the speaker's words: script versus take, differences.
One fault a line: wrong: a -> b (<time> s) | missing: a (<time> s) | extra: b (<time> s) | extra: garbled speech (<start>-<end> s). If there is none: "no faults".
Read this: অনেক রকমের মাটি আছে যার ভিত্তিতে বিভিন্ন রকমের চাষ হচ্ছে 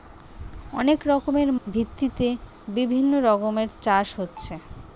missing: মাটি আছে যার (1.5 s)